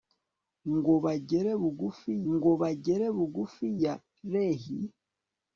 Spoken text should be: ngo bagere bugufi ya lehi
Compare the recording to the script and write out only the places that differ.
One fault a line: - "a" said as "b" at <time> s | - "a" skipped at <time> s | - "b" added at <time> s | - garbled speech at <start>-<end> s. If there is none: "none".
- "ngo bagere bugufi" added at 2.3 s